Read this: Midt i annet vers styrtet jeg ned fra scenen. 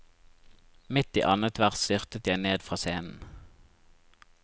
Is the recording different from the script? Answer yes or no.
no